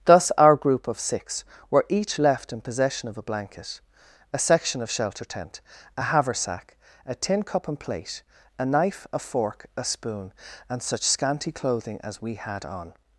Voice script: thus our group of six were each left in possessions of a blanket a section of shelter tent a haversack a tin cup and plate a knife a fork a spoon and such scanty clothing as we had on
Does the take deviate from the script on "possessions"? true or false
true